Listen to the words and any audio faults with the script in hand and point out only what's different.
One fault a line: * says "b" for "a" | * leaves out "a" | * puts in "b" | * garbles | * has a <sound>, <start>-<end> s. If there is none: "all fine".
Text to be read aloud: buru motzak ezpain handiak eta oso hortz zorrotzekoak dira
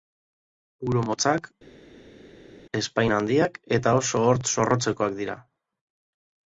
all fine